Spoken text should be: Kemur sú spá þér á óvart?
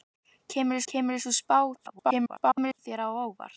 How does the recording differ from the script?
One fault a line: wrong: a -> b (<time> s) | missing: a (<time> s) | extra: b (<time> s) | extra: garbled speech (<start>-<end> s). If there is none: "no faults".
extra: kemur (0.9 s)
extra: garbled speech (1.8-2.8 s)